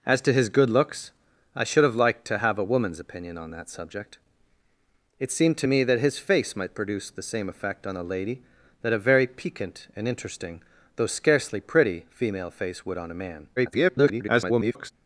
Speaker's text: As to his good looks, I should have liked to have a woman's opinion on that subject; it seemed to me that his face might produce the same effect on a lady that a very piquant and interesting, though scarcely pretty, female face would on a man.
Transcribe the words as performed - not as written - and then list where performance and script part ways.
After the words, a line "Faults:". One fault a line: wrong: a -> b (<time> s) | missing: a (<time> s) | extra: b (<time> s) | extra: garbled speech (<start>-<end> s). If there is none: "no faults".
As to his good looks, I should have liked to have a woman's opinion on that subject; it seemed to me that his face might produce the same effect on a lady that a very piquant and interesting, though scarcely pretty, female face would on a man. [garbled]
Faults:
extra: garbled speech (13.6-14.9 s)